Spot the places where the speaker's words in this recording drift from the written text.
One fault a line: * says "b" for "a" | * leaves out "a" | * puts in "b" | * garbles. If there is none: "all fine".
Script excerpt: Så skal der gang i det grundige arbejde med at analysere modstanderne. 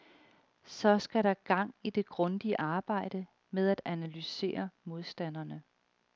all fine